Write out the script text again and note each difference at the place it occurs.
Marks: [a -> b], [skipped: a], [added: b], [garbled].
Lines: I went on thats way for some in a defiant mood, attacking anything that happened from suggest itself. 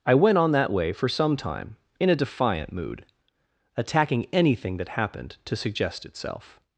I went on [thats -> that] way for some [added: time] in a defiant mood, attacking anything that happened [from -> to] suggest itself.